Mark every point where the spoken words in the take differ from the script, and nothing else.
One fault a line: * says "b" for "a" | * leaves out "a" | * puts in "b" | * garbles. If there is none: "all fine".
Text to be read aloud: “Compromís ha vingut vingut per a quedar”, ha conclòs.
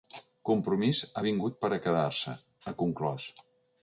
* leaves out "vingut"
* puts in "se"